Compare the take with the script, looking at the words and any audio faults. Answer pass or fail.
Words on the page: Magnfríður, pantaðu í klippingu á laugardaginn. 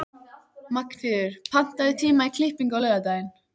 fail